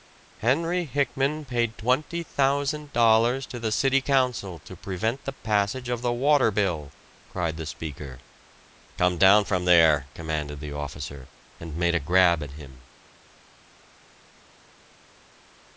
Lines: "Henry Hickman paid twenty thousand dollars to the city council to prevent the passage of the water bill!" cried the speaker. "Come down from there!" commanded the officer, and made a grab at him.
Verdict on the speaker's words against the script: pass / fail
pass